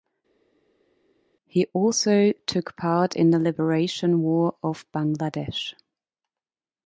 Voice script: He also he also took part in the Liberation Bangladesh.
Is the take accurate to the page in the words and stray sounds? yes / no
no